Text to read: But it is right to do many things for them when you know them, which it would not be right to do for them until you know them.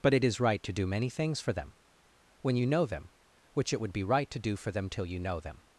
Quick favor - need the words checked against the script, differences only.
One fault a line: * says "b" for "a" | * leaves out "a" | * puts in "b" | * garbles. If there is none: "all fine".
* leaves out "not"
* says "till" for "until"